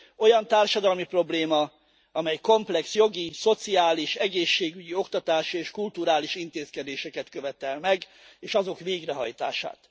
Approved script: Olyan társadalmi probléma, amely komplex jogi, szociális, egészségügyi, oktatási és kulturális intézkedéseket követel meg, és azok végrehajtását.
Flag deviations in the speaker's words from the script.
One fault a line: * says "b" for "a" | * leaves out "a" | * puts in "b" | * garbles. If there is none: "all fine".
all fine